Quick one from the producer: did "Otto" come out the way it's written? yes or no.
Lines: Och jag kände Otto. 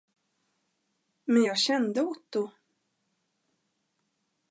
yes